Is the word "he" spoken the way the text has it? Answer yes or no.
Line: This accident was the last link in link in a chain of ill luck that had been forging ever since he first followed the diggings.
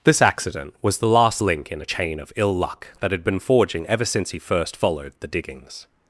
yes